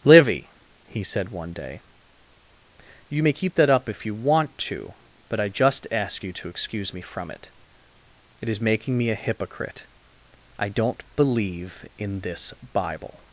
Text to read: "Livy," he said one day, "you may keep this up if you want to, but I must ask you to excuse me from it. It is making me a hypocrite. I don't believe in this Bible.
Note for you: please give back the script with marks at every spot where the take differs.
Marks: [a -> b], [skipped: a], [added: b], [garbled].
"Livy," he said one day, "you may keep [this -> that] up if you want to, but I [must -> just] ask you to excuse me from it. It is making me a hypocrite. I don't believe in this Bible.